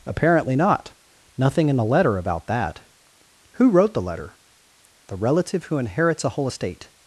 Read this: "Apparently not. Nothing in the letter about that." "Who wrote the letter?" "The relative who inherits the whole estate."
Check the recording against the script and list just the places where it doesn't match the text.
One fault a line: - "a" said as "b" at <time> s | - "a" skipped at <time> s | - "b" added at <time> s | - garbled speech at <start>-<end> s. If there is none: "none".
- "the" said as "a" at 6.2 s